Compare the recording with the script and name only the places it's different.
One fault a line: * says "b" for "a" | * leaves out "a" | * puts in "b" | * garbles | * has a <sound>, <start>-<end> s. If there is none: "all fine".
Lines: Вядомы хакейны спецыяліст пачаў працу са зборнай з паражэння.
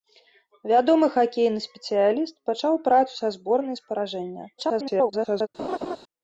* garbles
* has a laugh, 5.6-6.0 s